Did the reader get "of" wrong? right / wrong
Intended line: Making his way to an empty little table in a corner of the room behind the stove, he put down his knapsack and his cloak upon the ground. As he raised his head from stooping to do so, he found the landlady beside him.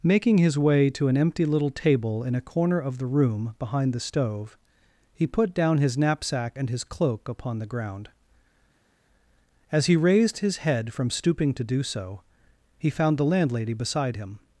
right